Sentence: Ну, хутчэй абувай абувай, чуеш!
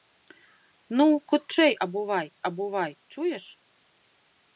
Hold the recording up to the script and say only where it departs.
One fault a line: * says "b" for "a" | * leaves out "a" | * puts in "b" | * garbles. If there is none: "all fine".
all fine